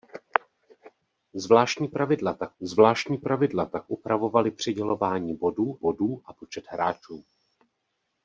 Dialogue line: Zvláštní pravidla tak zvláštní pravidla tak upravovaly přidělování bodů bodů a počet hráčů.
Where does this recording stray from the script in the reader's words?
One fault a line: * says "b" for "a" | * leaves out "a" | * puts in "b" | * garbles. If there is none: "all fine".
all fine